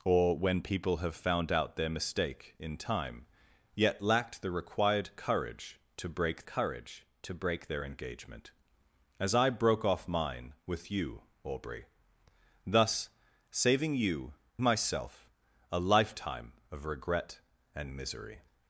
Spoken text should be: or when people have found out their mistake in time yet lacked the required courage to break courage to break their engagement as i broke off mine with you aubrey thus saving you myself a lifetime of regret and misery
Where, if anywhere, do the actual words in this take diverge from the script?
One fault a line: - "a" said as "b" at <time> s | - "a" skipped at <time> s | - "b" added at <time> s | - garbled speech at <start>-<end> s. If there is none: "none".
none